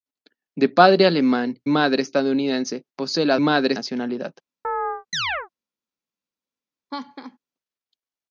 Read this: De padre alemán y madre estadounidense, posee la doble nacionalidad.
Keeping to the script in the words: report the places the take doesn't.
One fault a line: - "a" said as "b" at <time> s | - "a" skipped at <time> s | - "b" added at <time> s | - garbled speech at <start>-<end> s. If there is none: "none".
- "y" skipped at 1.6 s
- "doble" said as "madre" at 3.4 s